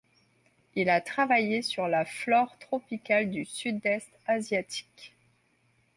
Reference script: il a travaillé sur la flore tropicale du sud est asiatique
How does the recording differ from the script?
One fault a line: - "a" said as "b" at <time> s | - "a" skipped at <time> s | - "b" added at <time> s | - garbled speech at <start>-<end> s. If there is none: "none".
none